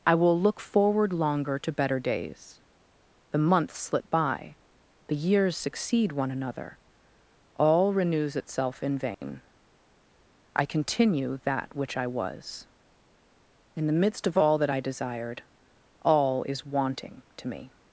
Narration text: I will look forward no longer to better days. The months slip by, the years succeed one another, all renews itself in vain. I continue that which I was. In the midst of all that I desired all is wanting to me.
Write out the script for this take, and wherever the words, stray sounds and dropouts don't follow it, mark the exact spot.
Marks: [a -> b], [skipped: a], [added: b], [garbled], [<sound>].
I will look forward [skipped: no] longer to better days. The months slip by, the years succeed one another, all renews itself in vain. [dropout] I continue that which I was. In the midst of all that I desired all is wanting to me.